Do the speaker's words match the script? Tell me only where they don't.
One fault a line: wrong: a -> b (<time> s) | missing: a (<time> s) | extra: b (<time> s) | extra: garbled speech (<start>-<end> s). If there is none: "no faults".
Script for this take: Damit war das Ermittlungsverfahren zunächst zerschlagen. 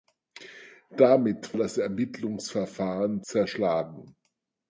missing: war (1.6 s)
missing: zunächst (3.2 s)